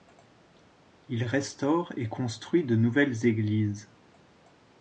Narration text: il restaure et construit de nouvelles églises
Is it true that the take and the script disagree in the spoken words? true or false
false